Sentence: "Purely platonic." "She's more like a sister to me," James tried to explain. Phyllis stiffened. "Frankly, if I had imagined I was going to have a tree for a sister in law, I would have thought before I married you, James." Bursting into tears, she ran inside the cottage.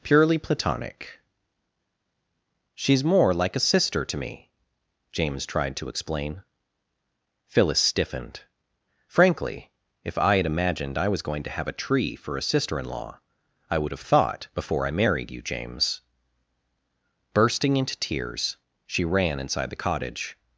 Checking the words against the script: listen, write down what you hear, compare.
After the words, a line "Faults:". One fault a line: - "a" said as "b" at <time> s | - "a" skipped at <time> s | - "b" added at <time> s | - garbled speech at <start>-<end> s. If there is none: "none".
"Purely platonic." "She's more like a sister to me," James tried to explain. Phyllis stiffened. "Frankly, if I had imagined I was going to have a tree for a sister in law, I would have thought before I married you, James." Bursting into tears, she ran inside the cottage.
Faults:
none